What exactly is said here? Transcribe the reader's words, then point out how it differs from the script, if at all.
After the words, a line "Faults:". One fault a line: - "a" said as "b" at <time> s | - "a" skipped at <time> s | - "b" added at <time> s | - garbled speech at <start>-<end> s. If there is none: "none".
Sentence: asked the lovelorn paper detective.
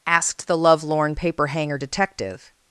asked the lovelorn paper hanger detective.
Faults:
- "hanger" added at 1.5 s